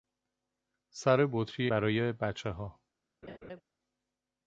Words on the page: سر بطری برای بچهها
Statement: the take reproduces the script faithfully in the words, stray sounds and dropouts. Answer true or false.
false